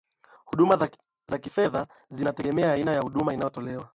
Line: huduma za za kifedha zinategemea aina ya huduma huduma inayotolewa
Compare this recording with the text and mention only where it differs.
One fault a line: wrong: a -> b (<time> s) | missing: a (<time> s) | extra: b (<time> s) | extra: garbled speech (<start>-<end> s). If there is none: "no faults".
missing: za (1.4 s)
missing: huduma (3.3 s)